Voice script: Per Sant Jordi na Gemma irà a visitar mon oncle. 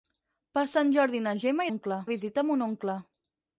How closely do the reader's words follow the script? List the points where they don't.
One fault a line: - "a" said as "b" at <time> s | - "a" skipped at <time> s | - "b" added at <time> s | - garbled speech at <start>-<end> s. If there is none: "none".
- "irà" said as "oncle" at 1.7 s